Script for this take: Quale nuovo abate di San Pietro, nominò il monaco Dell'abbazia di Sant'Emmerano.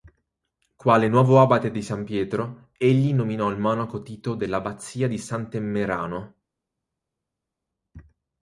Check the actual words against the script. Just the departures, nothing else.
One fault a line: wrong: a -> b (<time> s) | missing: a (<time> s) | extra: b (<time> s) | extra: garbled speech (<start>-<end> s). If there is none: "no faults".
extra: egli (2.8 s)
extra: Tito (4.0 s)